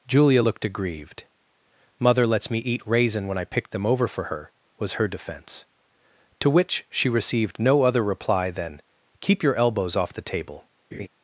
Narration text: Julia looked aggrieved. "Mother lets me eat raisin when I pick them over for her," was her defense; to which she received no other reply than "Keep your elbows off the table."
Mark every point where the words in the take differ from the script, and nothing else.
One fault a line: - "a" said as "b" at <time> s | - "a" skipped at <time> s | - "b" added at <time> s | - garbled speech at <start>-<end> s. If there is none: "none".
none